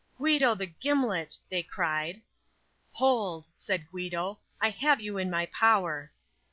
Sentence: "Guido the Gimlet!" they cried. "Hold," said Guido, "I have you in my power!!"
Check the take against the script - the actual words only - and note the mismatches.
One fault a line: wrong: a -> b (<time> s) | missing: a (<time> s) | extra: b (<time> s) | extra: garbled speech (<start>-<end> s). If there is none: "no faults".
no faults